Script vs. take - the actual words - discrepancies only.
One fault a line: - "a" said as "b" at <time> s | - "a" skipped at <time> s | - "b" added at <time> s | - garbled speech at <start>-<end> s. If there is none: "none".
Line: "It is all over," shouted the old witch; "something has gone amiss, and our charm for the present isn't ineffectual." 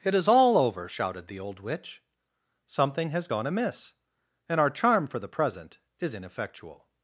- "isn't" said as "is" at 6.0 s